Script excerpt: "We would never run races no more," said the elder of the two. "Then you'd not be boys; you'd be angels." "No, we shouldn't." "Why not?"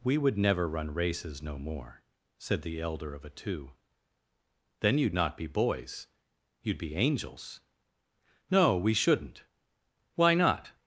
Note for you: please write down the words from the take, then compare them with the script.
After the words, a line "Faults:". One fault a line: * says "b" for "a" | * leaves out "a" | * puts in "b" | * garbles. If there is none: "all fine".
"We would never run races no more," said the elder of a two. "Then you'd not be boys; you'd be angels." "No, we shouldn't." "Why not?"
Faults:
* says "a" for "the"